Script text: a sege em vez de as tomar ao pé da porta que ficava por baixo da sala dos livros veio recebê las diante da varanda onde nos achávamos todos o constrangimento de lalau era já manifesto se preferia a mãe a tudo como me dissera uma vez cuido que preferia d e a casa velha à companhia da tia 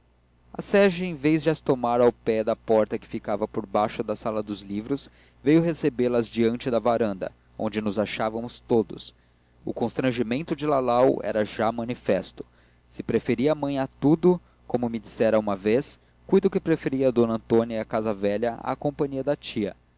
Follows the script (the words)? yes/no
no